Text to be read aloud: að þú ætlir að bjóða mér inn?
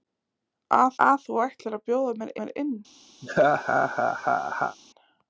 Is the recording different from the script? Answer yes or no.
yes